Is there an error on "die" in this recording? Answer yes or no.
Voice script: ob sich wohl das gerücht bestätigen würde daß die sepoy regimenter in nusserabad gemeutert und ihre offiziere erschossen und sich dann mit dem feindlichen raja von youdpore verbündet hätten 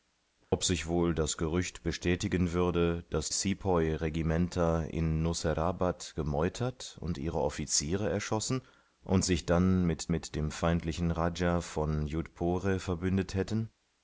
yes